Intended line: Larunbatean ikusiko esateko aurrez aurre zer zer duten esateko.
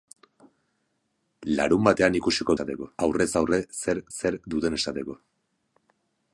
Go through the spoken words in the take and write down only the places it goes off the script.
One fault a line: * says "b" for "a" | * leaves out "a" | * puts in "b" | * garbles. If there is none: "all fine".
all fine